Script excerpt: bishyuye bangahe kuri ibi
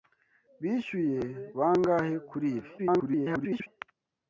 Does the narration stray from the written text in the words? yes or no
yes